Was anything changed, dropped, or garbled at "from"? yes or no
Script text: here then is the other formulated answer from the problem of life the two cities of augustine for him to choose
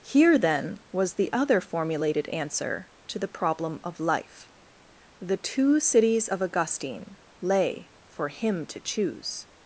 yes